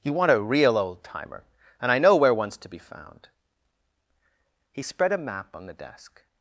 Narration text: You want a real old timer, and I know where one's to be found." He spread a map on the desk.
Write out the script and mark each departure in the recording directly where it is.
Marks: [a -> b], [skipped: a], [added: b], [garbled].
You want a real old timer, and I know where one's to be found." He spread a map on the desk.